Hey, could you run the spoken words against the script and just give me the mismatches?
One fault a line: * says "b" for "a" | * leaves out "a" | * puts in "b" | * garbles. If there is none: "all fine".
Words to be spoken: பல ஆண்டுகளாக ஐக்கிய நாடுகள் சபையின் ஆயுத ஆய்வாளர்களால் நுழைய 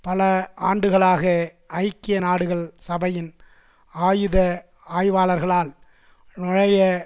all fine